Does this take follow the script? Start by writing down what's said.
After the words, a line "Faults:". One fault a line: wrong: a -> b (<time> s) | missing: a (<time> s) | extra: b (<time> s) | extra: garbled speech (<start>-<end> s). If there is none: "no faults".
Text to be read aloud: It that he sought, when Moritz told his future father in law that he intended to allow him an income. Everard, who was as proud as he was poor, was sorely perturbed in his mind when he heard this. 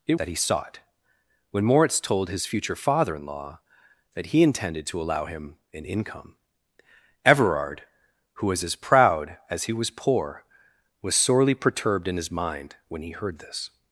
It that he sought, when Moritz told his future father in law that he intended to allow him an income. Everard, who was as proud as he was poor, was sorely perturbed in his mind when he heard this.
Faults:
no faults